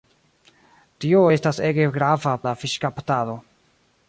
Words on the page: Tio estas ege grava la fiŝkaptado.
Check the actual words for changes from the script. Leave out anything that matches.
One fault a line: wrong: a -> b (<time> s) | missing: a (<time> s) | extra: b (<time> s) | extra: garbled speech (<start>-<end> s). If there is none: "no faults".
no faults